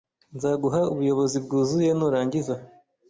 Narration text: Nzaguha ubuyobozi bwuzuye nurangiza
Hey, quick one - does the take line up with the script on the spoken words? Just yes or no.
yes